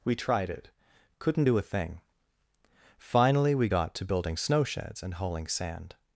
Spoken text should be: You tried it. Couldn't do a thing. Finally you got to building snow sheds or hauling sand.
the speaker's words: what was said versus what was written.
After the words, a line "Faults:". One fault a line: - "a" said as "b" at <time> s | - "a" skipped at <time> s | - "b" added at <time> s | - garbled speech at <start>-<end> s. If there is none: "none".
We tried it. Couldn't do a thing. Finally we got to building snow sheds and hauling sand.
Faults:
- "You" said as "We" at 0.0 s
- "you" said as "we" at 3.5 s
- "or" said as "and" at 5.0 s